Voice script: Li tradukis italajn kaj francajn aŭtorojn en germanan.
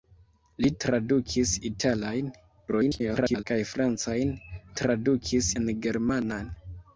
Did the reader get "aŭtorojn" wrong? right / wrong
wrong